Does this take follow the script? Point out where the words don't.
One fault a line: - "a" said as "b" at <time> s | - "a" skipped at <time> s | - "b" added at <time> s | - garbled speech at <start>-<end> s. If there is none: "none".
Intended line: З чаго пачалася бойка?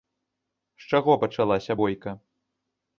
none